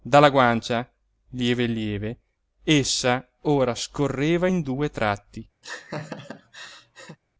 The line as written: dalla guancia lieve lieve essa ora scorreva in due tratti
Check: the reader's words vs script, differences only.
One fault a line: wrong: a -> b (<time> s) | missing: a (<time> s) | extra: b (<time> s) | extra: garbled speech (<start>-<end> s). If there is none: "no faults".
no faults